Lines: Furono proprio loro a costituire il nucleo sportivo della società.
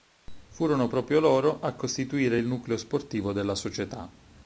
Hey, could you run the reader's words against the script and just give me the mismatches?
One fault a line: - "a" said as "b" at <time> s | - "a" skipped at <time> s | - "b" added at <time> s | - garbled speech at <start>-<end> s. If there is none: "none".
none